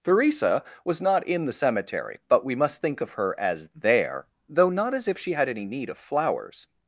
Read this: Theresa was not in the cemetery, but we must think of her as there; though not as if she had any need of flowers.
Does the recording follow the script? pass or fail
pass